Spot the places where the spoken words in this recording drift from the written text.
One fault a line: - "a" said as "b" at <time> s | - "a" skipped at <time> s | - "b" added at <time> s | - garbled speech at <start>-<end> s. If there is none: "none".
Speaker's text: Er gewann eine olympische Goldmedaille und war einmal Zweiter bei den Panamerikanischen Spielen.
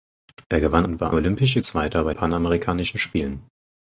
- "eine olympische Goldmedaille" skipped at 0.9 s
- "einmal" said as "olympische" at 1.1 s
- "den" skipped at 2.1 s